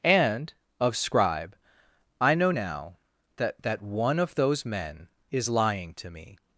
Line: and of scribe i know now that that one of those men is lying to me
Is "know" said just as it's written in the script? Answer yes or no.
yes